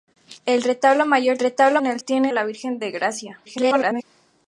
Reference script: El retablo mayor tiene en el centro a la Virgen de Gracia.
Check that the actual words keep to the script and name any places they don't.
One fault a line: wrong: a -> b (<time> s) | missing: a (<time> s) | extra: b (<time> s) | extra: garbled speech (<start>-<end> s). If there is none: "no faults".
wrong: tiene -> retablo (1.4 s)
wrong: centro -> tiene (2.0 s)
extra: garbled speech (3.4-4.0 s)